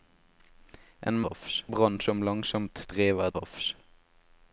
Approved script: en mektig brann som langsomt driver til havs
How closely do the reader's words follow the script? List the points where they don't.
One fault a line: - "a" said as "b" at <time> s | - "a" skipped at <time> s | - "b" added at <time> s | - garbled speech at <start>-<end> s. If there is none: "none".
- "mektig" said as "havs" at 1.3 s
- "til" skipped at 3.3 s